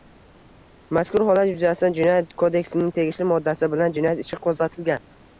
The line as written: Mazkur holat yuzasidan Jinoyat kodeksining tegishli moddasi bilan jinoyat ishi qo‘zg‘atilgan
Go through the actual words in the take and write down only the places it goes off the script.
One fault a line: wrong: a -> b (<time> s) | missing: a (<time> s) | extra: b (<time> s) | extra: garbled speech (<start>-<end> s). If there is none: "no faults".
no faults